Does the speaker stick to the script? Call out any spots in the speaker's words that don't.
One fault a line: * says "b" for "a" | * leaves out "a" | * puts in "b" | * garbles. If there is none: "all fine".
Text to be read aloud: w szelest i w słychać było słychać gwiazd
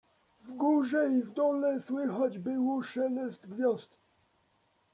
* says "górze" for "szelest"
* puts in "dole"
* says "szelest" for "słychać"